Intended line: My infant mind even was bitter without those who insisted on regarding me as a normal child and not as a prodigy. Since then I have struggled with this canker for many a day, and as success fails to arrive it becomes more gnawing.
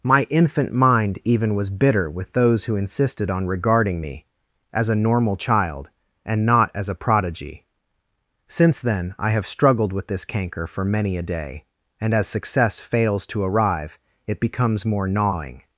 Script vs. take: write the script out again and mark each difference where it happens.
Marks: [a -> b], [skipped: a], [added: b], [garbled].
My infant mind even was bitter [without -> with] those who insisted on regarding me as a normal child and not as a prodigy. Since then I have struggled with this canker for many a day, and as success fails to arrive it becomes more gnawing.